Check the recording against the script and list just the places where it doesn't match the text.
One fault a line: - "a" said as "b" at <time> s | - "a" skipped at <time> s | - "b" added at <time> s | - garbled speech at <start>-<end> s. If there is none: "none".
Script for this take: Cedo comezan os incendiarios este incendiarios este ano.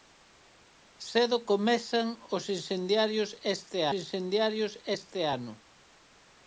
none